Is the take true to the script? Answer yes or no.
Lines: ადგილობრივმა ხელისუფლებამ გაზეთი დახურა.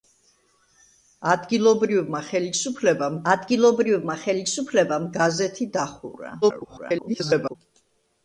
no